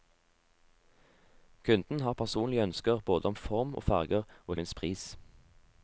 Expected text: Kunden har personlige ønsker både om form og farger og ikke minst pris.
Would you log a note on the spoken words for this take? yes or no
yes